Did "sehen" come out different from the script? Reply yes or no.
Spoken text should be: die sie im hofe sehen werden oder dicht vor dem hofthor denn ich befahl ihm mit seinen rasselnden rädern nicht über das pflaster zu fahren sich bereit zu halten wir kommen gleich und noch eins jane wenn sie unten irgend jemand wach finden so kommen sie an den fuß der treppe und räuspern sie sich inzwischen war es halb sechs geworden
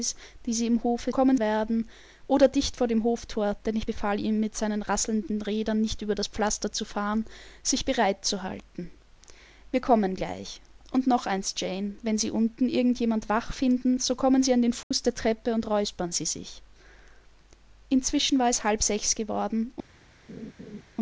yes